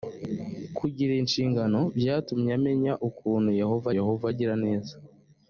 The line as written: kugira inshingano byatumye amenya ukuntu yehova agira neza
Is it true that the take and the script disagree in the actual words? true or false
true